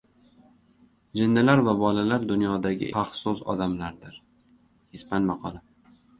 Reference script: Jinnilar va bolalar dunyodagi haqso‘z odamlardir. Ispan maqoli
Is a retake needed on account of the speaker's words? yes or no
no